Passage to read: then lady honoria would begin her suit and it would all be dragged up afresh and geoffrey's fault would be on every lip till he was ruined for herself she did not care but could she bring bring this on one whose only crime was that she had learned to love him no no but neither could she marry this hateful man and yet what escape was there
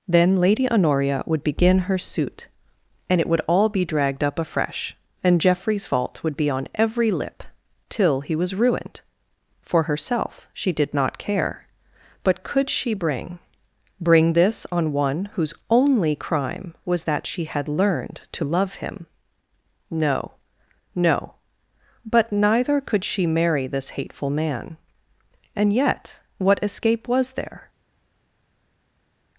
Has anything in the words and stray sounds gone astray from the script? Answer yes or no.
no